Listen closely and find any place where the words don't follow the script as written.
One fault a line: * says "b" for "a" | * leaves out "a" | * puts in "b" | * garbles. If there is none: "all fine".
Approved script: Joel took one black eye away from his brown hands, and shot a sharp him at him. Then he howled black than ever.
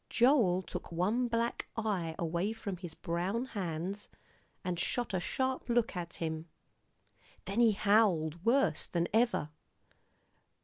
* says "look" for "him"
* says "worse" for "black"